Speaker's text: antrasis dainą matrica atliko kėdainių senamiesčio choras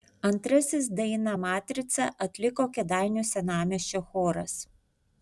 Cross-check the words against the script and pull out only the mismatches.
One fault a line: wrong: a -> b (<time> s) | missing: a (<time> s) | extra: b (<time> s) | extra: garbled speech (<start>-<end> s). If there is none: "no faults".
no faults